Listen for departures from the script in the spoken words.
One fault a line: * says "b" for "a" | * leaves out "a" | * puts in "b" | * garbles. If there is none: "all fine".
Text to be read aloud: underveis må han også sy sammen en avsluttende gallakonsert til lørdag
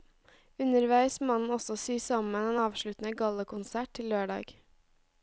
all fine